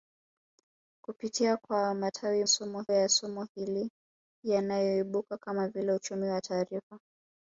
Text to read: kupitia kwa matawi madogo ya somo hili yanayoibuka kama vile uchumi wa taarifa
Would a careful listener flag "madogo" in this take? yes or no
yes